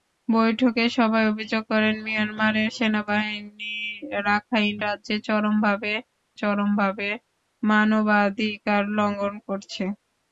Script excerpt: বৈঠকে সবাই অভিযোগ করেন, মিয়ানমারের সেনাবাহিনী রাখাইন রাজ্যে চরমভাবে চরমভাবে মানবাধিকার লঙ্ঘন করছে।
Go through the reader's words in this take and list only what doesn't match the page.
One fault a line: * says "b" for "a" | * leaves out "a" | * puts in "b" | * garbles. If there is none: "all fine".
all fine